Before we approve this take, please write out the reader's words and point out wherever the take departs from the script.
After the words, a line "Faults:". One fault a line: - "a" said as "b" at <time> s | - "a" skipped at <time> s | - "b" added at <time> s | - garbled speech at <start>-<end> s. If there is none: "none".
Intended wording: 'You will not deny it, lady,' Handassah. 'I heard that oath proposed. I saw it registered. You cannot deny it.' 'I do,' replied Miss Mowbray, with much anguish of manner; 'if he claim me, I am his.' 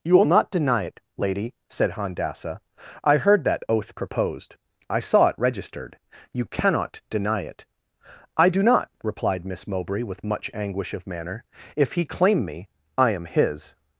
'You will not deny it, lady,' said Handassah. 'I heard that oath proposed. I saw it registered. You cannot deny it.' 'I do not,' replied Miss Mowbray, with much anguish of manner; 'if he claim me, I am his.'
Faults:
- "said" added at 1.7 s
- "not" added at 8.6 s